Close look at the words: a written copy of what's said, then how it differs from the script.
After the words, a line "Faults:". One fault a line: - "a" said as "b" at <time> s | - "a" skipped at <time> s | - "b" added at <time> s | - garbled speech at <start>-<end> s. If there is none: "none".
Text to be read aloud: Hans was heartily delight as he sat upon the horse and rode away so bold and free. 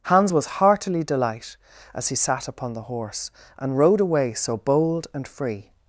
Hans was heartily delight as he sat upon the horse and rode away so bold and free.
Faults:
none